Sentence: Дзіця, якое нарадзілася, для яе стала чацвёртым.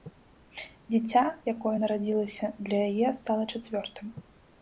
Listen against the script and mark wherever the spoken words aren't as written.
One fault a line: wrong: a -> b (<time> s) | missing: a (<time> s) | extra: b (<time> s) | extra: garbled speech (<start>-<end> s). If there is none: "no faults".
no faults